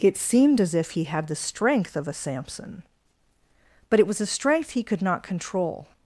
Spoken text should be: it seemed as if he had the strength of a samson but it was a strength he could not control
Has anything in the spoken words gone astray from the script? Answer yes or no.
no